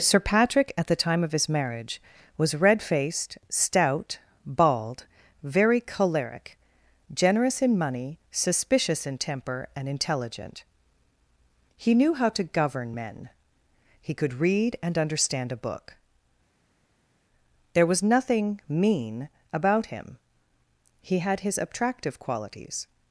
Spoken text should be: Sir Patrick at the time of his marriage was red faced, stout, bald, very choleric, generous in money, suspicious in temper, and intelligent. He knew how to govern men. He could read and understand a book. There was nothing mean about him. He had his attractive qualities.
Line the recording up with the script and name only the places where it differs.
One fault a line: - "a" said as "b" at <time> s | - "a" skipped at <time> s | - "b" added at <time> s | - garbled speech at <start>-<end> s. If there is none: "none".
none